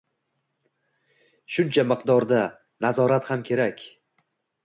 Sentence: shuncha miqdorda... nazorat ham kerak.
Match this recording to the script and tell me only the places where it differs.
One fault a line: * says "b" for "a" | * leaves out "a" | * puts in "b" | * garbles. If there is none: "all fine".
all fine